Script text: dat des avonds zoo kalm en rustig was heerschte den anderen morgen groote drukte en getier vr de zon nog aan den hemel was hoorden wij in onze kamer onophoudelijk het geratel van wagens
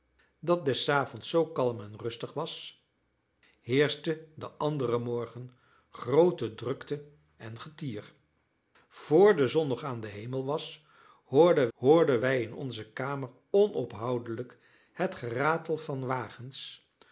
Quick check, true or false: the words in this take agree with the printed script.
false